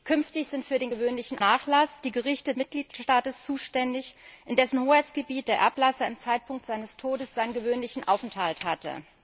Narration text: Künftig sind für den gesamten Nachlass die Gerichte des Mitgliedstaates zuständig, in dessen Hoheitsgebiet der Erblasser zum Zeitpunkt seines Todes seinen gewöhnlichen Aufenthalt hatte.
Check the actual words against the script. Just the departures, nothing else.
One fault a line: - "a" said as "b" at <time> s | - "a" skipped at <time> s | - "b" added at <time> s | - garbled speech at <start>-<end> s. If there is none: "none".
- "gesamten" said as "gewöhnlichen" at 0.9 s
- "des" skipped at 2.5 s